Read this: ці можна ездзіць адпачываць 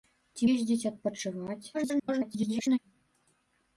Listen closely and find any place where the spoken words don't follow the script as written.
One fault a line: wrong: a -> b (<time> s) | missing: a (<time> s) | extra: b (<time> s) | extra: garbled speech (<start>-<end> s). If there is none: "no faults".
missing: можна (0.5 s)
extra: garbled speech (1.7-2.8 s)